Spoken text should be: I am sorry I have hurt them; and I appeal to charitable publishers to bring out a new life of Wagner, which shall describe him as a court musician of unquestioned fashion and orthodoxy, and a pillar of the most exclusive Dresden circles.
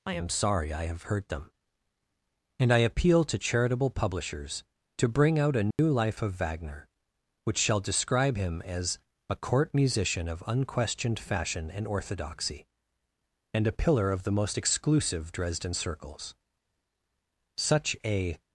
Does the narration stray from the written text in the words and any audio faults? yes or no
yes